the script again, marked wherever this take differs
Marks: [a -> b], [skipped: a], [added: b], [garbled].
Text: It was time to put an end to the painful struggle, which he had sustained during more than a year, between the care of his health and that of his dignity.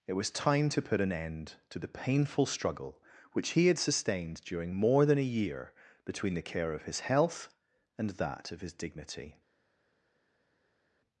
It was time to put an end to the painful struggle, which he had sustained during more than a year, between the care of his health and that of his dignity.